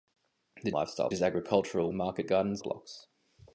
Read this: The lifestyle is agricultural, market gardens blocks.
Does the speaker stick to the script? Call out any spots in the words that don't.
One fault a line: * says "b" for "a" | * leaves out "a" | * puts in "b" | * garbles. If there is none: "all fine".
all fine